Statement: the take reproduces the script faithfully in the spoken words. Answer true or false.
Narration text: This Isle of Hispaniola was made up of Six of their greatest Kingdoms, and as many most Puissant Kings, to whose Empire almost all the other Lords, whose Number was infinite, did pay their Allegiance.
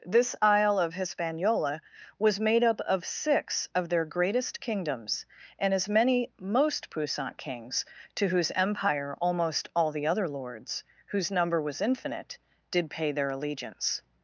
true